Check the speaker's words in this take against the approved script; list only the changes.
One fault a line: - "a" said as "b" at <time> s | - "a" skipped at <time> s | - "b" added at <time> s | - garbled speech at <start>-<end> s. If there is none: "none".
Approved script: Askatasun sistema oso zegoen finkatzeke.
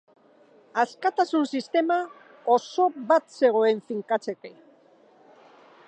- "bat" added at 3.1 s